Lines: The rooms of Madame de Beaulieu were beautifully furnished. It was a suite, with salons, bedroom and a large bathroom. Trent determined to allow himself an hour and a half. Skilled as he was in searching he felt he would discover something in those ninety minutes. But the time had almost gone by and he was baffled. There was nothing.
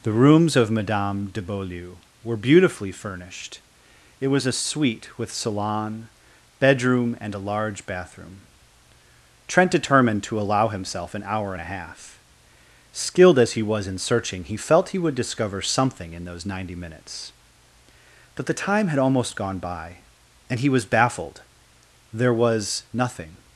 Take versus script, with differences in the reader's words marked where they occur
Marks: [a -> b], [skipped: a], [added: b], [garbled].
The rooms of Madame de Beaulieu were beautifully furnished. It was a suite, with [salons, -> salon] bedroom and a large bathroom. Trent determined to allow himself an hour and a half. Skilled as he was in searching he felt he would discover something in those ninety minutes. But the time had almost gone by and he was baffled. There was nothing.